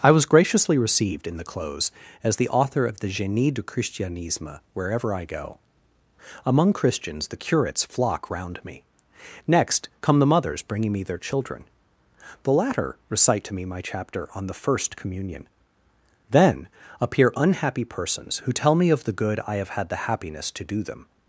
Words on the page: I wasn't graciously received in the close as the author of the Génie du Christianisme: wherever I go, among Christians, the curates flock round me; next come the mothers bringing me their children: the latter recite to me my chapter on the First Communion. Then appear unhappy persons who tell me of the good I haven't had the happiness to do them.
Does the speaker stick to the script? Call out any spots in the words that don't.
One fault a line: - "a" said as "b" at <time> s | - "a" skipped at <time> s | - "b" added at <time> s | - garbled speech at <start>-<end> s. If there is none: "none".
- "wasn't" said as "was" at 0.1 s
- "haven't" said as "have" at 19.6 s